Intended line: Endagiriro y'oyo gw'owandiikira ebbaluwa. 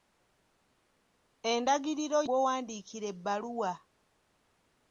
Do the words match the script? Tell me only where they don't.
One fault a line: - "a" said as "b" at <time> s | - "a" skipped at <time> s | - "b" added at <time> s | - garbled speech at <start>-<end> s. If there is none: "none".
- "y'oyo" skipped at 2.2 s